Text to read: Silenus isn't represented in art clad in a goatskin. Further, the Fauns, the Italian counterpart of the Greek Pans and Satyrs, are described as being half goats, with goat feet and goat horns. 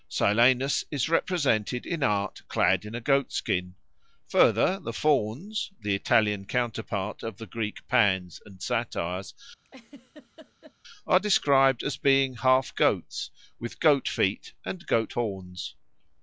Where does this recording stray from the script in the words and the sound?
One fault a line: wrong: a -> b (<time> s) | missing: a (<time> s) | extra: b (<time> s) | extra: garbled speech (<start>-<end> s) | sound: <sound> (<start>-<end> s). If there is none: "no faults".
wrong: isn't -> is (0.9 s)
sound: laugh (9.6-10.7 s)